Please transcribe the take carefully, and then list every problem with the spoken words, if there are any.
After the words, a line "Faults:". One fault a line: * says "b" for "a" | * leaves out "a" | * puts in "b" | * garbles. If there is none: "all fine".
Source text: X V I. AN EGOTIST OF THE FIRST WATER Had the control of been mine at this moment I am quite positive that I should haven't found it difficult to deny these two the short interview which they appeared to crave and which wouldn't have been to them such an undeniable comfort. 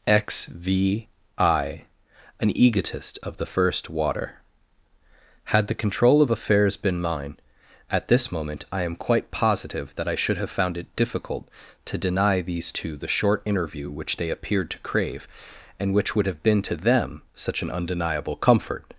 X V I. AN EGOTIST OF THE FIRST WATER Had the control of affairs been mine at this moment I am quite positive that I should have found it difficult to deny these two the short interview which they appeared to crave and which would have been to them such an undeniable comfort.
Faults:
* puts in "affairs"
* says "have" for "haven't"
* says "would" for "wouldn't"